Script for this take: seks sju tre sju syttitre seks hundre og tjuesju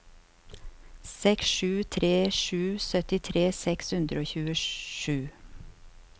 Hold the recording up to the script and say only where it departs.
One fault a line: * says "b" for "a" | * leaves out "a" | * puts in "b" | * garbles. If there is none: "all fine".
all fine